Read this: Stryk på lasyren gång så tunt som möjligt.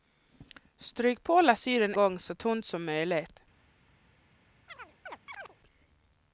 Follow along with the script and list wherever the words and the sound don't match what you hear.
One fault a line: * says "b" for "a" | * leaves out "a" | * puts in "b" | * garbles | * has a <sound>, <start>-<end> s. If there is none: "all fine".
* has a chirp, 4.7-5.6 s